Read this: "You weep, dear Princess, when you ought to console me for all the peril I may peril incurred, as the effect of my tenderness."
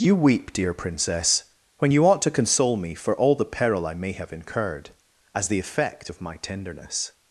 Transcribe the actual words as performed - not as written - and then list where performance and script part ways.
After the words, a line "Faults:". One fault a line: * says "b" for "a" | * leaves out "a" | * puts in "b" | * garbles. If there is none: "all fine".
"You weep, dear Princess, when you ought to console me for all the peril I may have incurred, as the effect of my tenderness."
Faults:
* says "have" for "peril"